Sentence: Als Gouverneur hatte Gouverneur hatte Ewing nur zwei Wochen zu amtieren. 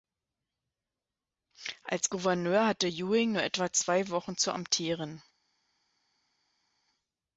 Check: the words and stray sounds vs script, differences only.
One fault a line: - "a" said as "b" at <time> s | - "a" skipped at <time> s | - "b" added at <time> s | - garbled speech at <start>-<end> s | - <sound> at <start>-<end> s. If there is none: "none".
- "Gouverneur hatte" skipped at 2.9 s
- "etwa" added at 3.4 s